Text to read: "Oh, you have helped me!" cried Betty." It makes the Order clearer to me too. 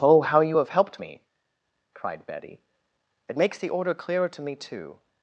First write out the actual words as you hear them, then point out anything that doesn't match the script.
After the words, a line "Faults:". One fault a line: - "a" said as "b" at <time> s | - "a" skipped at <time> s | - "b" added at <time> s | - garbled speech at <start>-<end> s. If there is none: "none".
"Oh, how you have helped me!" cried Betty." It makes the Order clearer to me too.
Faults:
- "how" added at 0.2 s